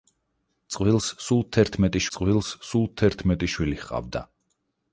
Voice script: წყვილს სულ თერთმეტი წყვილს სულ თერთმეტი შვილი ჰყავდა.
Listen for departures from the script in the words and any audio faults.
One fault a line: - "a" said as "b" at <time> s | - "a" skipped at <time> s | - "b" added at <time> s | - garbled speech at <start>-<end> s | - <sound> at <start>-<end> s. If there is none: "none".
none